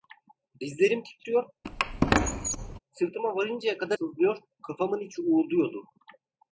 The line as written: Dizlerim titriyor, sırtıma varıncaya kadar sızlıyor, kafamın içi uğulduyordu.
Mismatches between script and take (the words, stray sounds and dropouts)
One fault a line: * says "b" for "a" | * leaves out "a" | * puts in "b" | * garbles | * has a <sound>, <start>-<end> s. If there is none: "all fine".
* has a squeak, 1.6-2.8 s